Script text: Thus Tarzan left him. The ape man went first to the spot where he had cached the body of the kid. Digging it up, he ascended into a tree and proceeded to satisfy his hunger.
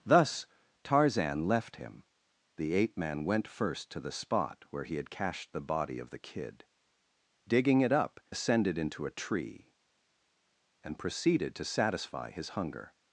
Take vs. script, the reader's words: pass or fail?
fail